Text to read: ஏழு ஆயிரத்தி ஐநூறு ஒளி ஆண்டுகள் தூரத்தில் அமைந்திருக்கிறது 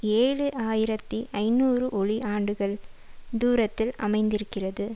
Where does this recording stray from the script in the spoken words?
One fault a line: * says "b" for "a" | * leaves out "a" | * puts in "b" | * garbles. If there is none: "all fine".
all fine